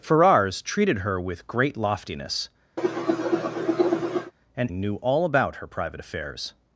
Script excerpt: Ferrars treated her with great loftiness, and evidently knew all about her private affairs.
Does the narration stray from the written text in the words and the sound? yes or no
yes